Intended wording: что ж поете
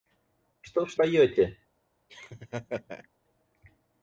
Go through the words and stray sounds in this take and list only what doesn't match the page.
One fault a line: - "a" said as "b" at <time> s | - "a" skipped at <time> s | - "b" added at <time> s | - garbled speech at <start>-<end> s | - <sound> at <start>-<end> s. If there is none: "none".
- laugh at 2.1-3.1 s